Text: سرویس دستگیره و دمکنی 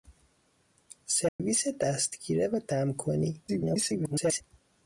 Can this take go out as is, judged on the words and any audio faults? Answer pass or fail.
fail